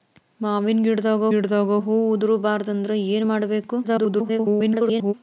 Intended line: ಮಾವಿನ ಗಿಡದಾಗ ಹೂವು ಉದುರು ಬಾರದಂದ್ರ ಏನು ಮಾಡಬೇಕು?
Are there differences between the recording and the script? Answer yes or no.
yes